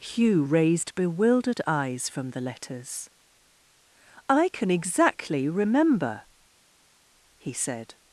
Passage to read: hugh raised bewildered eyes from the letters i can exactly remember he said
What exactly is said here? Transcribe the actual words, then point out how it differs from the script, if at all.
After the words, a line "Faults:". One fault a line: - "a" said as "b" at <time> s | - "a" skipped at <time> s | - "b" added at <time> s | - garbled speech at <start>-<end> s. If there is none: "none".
hugh raised bewildered eyes from the letters i can exactly remember he said
Faults:
none